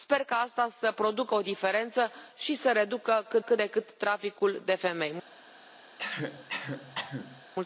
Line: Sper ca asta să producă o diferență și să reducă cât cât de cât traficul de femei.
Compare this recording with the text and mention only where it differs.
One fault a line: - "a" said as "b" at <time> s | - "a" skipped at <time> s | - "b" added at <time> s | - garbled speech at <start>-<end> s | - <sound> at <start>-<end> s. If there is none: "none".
- cough at 6.0-7.5 s